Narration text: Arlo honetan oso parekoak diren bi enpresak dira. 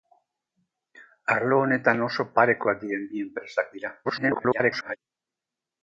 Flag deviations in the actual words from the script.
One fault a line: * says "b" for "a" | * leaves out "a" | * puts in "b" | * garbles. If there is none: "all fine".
* garbles